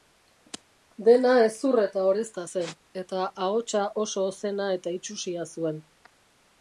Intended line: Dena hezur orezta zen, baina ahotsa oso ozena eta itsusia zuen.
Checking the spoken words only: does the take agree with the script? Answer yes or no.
no